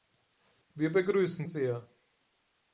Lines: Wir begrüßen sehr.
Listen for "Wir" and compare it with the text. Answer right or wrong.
right